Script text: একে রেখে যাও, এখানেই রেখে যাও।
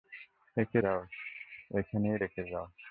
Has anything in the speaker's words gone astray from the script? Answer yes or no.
yes